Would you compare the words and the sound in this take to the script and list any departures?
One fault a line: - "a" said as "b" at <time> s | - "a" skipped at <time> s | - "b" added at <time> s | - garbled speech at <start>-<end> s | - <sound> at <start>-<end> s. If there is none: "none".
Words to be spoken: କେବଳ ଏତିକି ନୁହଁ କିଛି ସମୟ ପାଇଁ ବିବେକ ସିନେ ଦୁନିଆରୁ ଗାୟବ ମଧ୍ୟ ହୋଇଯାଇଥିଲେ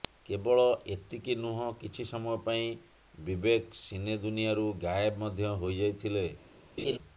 - laugh at 6.8-7.0 s